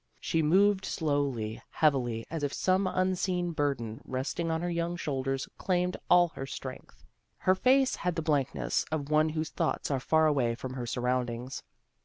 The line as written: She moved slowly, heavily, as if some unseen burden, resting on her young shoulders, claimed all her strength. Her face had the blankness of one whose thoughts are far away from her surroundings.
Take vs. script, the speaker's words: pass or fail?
pass